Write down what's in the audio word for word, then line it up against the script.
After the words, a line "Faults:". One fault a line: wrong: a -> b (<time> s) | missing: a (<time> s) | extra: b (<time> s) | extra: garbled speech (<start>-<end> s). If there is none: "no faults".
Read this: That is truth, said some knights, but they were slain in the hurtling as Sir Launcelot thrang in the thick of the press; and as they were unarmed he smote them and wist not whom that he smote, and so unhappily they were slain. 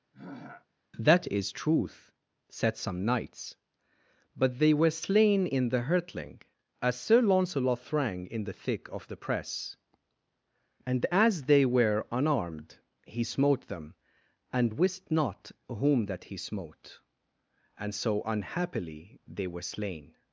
That is truth, said some knights, but they were slain in the hurtling as Sir Launcelot thrang in the thick of the press; and as they were unarmed he smote them and wist not whom that he smote, and so unhappily they were slain.
Faults:
no faults